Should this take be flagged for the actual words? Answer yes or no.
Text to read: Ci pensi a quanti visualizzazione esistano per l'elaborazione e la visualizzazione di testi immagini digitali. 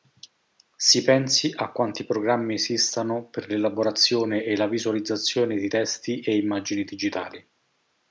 yes